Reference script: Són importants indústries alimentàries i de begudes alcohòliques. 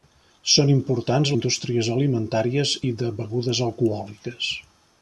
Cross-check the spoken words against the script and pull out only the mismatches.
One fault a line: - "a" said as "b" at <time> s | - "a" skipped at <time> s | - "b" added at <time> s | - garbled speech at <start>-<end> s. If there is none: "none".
none